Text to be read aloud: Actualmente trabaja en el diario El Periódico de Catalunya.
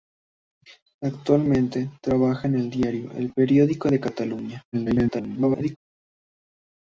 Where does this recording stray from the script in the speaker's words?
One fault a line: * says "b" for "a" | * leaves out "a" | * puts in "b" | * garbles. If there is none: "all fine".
* garbles